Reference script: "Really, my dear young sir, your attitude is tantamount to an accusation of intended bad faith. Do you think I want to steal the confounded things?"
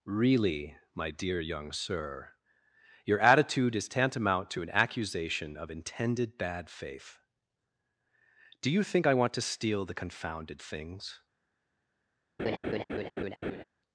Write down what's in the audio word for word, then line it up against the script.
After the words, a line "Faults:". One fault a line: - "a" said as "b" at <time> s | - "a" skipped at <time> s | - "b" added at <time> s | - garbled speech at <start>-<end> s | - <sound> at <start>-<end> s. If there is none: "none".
"Really, my dear young sir, your attitude is tantamount to an accusation of intended bad faith. Do you think I want to steal the confounded things?"
Faults:
- laugh at 12.4-13.6 s